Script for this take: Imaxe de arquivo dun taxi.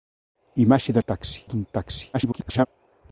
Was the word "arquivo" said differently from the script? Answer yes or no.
yes